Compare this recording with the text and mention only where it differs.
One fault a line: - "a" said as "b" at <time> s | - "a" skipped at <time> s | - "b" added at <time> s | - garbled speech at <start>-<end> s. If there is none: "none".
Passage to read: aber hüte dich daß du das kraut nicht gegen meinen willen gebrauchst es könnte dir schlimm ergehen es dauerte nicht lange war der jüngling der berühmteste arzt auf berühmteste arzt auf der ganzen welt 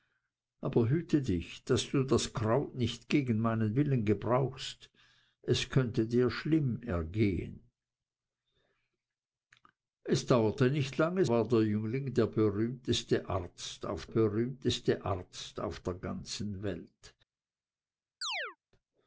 none